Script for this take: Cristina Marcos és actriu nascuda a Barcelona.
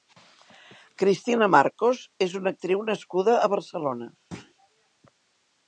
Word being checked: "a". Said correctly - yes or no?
yes